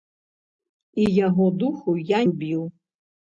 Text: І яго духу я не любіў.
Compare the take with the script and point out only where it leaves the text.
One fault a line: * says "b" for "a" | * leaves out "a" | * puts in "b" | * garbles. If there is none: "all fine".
* leaves out "не"